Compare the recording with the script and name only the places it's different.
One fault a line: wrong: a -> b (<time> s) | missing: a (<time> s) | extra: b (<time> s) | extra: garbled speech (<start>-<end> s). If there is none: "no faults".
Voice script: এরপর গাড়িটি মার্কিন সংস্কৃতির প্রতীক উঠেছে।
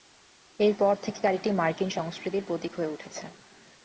extra: থেকে (1.0 s)
extra: হয়ে (2.7 s)